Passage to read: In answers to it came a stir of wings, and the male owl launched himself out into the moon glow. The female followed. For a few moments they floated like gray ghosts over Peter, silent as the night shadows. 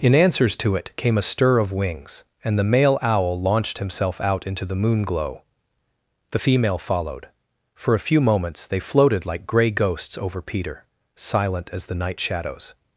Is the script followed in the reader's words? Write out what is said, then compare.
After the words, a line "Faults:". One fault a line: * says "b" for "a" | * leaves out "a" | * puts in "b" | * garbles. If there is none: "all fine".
In answers to it came a stir of wings, and the male owl launched himself out into the moon glow. The female followed. For a few moments they floated like gray ghosts over Peter, silent as the night shadows.
Faults:
all fine